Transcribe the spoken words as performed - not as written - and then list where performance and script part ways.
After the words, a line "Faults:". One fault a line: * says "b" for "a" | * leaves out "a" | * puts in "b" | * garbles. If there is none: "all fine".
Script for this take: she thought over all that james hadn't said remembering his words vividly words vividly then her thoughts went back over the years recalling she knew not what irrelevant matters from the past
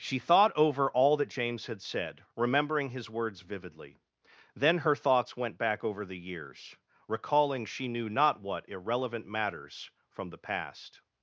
she thought over all that james had said remembering his words vividly then her thoughts went back over the years recalling she knew not what irrelevant matters from the past
Faults:
* says "had" for "hadn't"
* leaves out "words vividly"